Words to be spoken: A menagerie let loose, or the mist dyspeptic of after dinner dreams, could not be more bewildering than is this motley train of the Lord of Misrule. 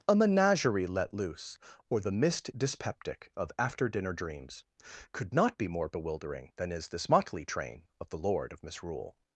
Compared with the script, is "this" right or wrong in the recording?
right